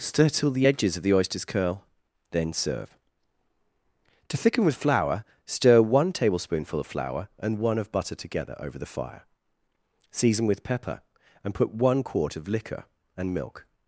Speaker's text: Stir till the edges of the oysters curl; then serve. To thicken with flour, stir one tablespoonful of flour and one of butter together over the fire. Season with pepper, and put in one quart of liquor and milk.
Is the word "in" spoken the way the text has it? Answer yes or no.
no